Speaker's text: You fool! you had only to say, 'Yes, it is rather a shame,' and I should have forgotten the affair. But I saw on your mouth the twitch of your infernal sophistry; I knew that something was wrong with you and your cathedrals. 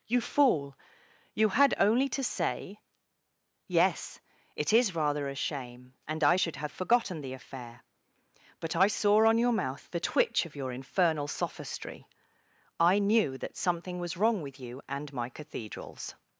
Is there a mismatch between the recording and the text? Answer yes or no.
yes